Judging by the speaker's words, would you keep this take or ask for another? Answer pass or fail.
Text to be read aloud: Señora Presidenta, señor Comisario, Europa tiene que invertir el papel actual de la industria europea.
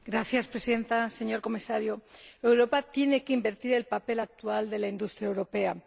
pass